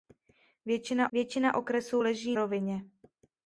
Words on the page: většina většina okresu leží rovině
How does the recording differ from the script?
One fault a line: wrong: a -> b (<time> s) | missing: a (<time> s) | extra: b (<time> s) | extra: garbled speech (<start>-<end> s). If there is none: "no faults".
no faults